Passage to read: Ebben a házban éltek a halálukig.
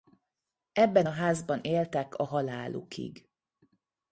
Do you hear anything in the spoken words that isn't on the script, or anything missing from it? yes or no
no